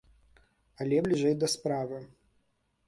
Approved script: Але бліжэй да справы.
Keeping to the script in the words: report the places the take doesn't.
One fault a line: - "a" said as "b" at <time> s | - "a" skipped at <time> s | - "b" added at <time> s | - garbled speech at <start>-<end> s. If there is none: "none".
none